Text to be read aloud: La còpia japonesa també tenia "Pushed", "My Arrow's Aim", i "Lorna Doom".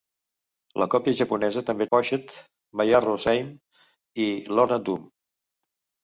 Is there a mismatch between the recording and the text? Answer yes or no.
yes